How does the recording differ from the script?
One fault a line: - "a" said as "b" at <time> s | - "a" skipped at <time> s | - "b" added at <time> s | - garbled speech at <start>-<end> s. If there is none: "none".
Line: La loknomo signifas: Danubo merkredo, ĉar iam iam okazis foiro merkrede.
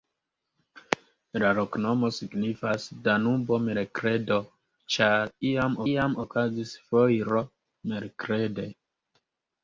none